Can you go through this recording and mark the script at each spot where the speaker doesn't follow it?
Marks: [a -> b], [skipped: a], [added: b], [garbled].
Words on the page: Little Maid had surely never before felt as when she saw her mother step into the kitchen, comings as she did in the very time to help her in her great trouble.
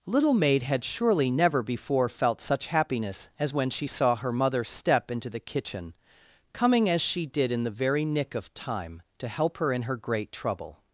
Little Maid had surely never before felt [added: such happiness] as when she saw her mother step into the kitchen, [comings -> coming] as she did in the very [added: nick of] time to help her in her great trouble.